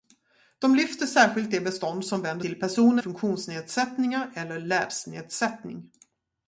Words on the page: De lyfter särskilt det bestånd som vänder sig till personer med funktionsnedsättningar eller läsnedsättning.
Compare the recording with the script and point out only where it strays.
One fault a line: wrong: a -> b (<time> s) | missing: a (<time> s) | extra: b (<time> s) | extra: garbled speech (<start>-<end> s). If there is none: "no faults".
missing: sig (2.5 s)
missing: med (3.0 s)